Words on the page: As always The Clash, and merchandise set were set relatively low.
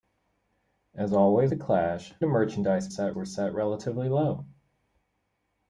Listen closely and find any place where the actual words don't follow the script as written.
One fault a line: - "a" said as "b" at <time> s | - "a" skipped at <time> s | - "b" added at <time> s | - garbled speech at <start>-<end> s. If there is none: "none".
none